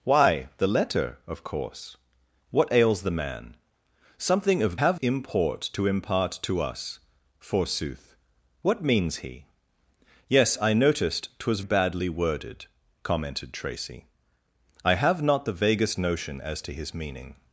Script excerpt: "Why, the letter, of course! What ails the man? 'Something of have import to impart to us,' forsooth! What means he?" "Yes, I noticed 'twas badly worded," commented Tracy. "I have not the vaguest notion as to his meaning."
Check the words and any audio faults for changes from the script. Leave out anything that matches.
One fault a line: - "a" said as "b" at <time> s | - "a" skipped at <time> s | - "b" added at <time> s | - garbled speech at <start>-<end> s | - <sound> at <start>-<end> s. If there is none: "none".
none